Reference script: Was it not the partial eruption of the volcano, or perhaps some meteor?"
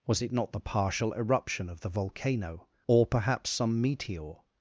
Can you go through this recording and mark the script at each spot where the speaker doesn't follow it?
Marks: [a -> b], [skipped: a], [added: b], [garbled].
Was it not the partial eruption of the volcano, or perhaps some meteor?"